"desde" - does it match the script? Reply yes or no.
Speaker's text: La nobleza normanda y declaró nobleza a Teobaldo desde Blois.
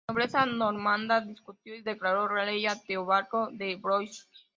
no